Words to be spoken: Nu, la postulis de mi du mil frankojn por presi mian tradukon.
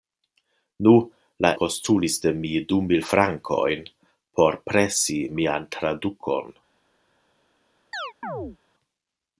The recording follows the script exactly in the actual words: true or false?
true